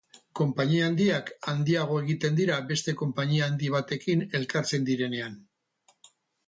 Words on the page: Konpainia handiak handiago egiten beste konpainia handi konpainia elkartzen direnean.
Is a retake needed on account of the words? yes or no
yes